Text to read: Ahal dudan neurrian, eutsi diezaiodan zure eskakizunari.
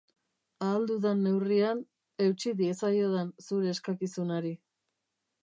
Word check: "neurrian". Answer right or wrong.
right